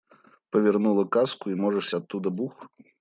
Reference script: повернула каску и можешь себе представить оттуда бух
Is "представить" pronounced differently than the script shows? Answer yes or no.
yes